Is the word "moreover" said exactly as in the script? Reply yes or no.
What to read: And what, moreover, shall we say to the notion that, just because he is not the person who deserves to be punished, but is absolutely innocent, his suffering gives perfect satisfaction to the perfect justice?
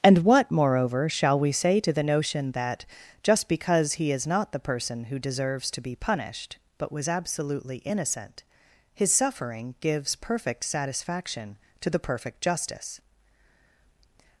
yes